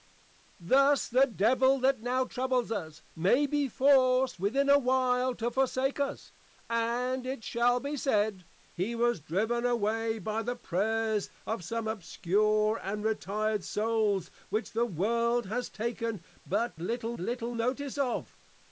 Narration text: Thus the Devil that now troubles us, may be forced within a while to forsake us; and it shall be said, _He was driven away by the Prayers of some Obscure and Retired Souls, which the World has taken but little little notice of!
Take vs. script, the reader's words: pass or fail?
pass